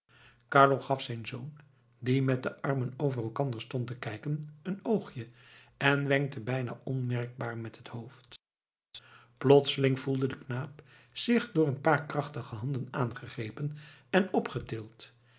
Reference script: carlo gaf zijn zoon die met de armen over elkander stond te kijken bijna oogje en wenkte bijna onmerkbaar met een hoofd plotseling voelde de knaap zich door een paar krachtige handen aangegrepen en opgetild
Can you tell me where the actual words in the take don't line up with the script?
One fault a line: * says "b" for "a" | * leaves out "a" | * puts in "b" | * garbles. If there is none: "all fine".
* says "een" for "bijna"
* says "het" for "een"